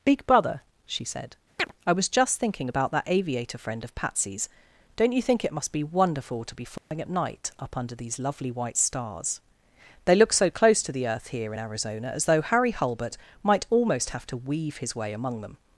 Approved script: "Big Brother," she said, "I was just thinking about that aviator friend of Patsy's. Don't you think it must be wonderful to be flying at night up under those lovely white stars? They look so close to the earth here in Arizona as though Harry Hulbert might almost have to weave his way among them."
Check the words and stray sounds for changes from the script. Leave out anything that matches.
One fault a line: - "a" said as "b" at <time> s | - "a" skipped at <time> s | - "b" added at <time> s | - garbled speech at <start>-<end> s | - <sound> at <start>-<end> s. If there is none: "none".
- chirp at 1.6-1.7 s
- dropout at 6.8-6.9 s
- "those" said as "these" at 7.9 s